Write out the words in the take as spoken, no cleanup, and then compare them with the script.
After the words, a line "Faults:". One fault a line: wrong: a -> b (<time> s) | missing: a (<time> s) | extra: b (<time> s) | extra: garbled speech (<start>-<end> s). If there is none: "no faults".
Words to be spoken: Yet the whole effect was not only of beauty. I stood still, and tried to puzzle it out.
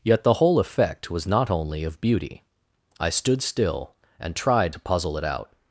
Yet the whole effect was not only of beauty. I stood still, and tried to puzzle it out.
Faults:
no faults